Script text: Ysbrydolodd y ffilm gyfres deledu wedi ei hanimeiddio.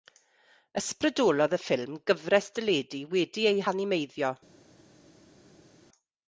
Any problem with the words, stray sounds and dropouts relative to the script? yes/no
no